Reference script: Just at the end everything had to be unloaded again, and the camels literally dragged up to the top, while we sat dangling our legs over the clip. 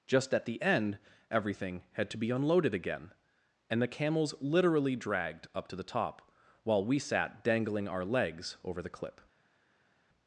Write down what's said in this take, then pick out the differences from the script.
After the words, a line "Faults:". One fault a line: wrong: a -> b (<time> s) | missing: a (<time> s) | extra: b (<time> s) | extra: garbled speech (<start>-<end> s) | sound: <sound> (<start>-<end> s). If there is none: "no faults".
Just at the end everything had to be unloaded again, and the camels literally dragged up to the top, while we sat dangling our legs over the clip.
Faults:
no faults